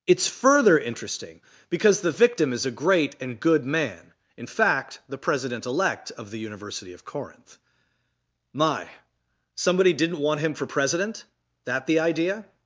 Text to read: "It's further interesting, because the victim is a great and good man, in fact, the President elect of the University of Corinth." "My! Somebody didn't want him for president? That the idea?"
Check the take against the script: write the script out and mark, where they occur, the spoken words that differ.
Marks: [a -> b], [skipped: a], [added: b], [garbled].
"It's further interesting, because the victim is a great and good man, in fact, the President elect of the University of Corinth." "My! Somebody didn't want him for president? That the idea?"